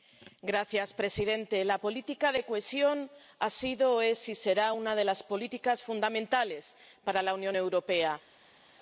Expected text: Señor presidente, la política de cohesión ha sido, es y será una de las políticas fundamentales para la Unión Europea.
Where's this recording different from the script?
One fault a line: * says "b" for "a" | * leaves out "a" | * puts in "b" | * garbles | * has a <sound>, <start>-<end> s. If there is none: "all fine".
all fine